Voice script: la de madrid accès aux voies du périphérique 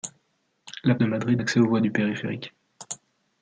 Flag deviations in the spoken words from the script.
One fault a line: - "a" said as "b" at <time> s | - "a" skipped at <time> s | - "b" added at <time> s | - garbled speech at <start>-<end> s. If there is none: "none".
none